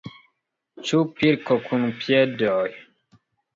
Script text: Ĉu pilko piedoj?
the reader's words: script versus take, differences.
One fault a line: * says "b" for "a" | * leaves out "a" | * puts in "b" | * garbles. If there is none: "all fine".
* puts in "kun"